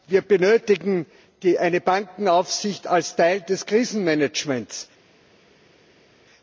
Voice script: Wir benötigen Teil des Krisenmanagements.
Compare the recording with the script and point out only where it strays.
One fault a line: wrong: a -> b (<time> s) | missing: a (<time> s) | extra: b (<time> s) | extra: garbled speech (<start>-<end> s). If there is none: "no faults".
extra: eine Bankenaufsicht als (1.6 s)